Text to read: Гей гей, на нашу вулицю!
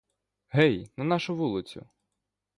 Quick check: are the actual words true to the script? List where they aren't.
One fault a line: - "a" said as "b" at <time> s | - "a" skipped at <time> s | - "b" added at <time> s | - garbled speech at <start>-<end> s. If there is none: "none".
- "гей" skipped at 0.9 s